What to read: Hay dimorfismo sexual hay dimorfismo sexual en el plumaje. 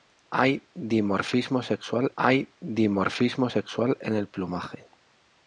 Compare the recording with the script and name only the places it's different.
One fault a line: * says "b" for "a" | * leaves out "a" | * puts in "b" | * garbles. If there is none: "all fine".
all fine